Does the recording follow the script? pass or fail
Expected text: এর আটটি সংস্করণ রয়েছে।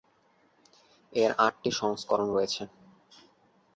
pass